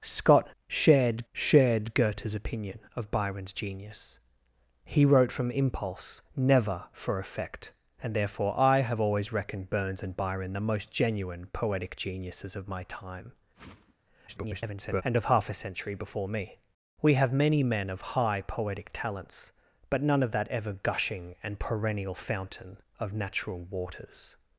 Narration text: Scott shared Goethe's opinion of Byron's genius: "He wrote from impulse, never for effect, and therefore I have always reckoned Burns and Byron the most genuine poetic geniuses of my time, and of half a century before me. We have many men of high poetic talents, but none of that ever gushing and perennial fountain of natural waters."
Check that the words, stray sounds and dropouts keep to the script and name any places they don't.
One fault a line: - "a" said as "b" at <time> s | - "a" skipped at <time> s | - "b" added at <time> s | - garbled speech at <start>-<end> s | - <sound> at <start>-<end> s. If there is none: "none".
- "shared" added at 1.3 s
- whoosh at 13.5-13.9 s
- garbled speech at 14.3-15.0 s